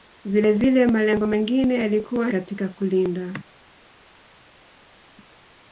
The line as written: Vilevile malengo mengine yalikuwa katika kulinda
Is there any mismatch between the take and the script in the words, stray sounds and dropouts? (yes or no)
no